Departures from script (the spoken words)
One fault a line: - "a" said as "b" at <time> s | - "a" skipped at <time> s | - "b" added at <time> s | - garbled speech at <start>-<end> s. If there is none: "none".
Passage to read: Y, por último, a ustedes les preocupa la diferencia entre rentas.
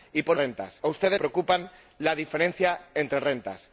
- "último" said as "rentas" at 0.3 s
- "les" skipped at 1.2 s